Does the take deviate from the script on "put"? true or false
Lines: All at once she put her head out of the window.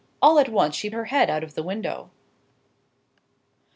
true